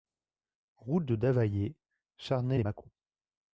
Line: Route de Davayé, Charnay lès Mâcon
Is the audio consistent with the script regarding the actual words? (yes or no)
yes